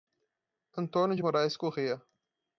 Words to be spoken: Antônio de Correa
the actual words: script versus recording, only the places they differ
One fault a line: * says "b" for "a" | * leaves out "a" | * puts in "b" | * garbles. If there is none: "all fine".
* puts in "Moraes"